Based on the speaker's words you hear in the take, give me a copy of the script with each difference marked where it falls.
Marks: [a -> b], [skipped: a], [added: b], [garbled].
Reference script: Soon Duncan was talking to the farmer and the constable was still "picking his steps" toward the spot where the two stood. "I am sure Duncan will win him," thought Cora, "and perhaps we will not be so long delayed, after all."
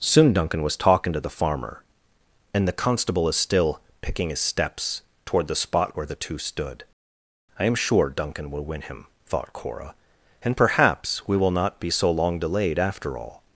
Soon Duncan was talking to the farmer and the constable [was -> is] still "picking his steps" toward the spot where the two stood. "I am sure Duncan will win him," thought Cora, "and perhaps we will not be so long delayed, after all."